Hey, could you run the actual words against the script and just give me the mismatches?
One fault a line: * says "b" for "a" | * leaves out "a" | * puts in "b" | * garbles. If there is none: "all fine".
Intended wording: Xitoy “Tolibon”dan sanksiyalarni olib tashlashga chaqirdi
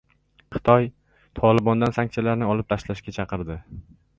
all fine